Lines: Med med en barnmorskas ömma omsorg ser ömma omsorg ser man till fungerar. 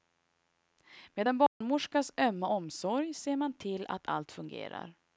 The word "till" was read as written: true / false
false